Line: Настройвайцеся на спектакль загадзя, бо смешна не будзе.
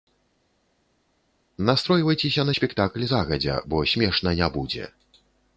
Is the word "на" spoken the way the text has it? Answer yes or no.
yes